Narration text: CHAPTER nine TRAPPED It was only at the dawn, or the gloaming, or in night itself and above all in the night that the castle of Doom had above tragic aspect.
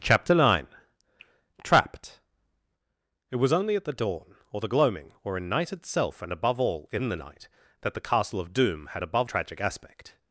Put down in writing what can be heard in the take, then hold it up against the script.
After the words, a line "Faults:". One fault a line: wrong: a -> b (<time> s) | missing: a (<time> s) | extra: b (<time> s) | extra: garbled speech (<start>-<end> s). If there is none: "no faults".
CHAPTER nine TRAPPED It was only at the dawn, or the gloaming, or in night itself and above all in the night that the castle of Doom had above tragic aspect.
Faults:
no faults